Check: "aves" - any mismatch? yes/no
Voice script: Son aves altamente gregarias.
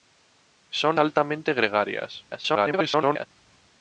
yes